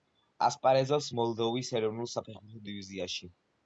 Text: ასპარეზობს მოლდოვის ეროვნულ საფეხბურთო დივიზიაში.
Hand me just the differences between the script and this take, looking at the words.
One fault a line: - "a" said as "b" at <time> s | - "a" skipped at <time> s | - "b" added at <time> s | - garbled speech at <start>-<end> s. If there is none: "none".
none